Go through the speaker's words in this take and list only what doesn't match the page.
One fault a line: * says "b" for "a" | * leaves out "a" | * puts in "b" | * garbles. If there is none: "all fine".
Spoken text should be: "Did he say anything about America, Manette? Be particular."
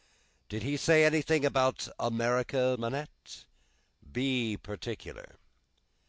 all fine